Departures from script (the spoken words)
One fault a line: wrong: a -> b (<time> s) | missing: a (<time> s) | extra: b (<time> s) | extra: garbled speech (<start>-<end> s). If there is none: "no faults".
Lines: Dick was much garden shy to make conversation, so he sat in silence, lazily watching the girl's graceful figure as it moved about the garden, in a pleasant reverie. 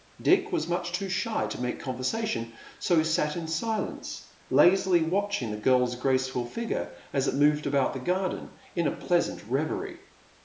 wrong: garden -> too (0.9 s)